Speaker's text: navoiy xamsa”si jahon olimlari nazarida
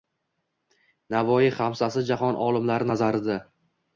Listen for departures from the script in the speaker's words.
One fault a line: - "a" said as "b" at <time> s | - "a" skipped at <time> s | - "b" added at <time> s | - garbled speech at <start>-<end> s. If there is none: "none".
none